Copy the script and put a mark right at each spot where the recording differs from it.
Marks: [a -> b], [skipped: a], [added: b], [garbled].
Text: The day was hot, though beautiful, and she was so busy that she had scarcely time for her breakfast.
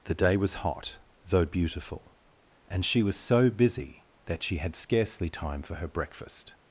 The day was hot, though beautiful, and she was so busy that she had scarcely time for her breakfast.